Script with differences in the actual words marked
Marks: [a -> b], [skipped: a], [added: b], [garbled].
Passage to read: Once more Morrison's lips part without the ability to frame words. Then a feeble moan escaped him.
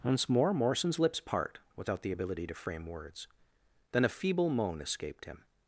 Once more Morrison's lips part without the ability to frame words. Then a feeble moan escaped him.